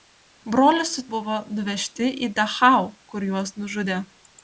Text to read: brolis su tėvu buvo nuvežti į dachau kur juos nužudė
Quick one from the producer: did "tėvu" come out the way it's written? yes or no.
no